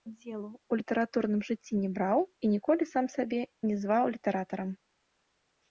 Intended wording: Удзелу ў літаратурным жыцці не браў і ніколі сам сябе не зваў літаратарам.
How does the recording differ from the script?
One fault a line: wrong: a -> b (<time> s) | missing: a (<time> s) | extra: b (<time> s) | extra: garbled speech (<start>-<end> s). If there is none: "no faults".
no faults